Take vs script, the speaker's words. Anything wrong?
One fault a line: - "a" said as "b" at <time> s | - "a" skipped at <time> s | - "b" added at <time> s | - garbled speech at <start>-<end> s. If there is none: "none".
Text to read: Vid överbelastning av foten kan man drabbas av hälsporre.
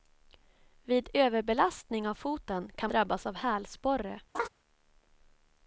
- "man" skipped at 2.9 s